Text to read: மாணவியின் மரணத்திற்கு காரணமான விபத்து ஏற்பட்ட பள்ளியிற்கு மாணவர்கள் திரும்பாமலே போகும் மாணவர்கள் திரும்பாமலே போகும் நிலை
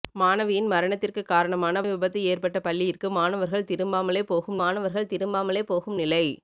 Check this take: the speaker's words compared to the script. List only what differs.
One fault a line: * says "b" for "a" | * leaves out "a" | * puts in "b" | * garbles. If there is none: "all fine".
all fine